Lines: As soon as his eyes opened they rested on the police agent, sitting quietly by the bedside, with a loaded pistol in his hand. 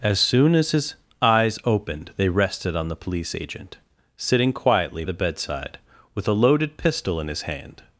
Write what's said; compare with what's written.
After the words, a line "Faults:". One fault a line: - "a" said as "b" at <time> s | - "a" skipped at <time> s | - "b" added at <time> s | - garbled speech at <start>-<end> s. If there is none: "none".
As soon as his eyes opened they rested on the police agent, sitting quietly the bedside, with a loaded pistol in his hand.
Faults:
- "by" skipped at 5.0 s